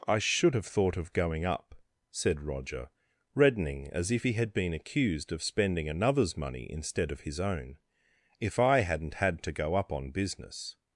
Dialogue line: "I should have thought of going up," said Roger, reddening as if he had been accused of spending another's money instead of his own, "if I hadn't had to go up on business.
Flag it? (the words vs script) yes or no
no